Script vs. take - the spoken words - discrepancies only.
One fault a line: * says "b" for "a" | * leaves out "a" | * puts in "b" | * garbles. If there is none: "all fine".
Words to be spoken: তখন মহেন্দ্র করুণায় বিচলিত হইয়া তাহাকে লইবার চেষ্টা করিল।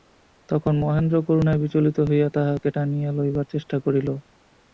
* puts in "টানিয়া"